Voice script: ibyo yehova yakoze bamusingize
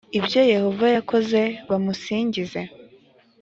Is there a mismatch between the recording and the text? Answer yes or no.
no